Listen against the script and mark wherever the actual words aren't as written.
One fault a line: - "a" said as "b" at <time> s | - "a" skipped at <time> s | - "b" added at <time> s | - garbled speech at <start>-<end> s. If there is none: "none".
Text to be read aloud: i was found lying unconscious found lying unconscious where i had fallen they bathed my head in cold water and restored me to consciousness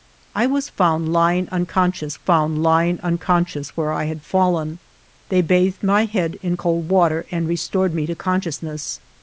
none